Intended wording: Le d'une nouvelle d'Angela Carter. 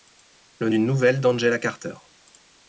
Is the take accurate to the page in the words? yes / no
yes